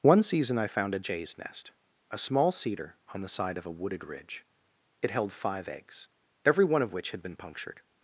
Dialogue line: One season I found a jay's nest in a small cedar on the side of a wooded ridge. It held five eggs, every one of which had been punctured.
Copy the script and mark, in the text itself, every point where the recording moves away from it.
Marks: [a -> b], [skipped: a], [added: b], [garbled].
One season I found a jay's nest [skipped: in] a small cedar on the side of a wooded ridge. It held five eggs, every one of which had been punctured.